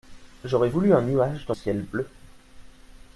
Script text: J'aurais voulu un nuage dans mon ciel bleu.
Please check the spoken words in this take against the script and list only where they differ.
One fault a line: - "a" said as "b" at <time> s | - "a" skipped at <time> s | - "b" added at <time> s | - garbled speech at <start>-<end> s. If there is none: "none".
- "mon" skipped at 1.5 s